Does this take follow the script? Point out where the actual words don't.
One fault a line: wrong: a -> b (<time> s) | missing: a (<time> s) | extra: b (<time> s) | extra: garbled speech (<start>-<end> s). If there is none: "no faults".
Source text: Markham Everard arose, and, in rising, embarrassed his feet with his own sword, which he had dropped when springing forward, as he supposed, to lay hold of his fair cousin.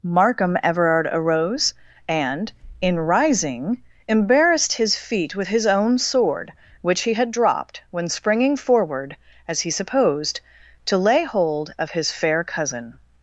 no faults